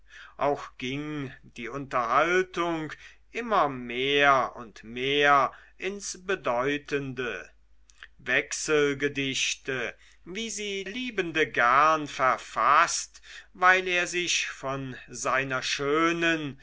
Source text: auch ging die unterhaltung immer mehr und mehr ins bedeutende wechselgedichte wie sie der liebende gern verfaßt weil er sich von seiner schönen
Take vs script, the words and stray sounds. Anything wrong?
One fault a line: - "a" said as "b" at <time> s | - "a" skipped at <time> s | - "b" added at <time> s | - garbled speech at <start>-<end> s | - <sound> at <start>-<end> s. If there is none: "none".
- "der" skipped at 10.8 s